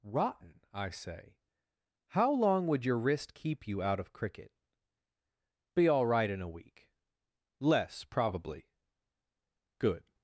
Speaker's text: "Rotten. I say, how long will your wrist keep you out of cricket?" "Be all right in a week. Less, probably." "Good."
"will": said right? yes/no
no